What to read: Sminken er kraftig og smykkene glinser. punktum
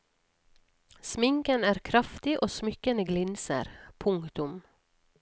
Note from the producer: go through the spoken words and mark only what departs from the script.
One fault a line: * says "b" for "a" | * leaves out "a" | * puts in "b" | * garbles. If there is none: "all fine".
all fine